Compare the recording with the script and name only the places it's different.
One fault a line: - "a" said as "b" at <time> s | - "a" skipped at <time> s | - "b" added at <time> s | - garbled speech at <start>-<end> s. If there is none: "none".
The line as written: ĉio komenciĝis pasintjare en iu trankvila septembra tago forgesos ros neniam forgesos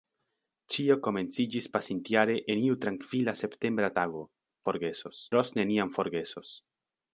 none